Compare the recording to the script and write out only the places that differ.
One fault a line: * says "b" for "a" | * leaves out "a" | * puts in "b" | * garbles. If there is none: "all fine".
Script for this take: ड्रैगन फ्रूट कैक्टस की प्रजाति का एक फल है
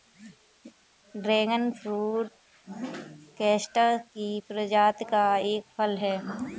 all fine